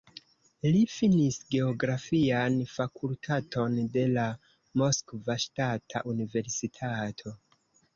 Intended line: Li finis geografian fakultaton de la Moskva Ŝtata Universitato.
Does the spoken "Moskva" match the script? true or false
true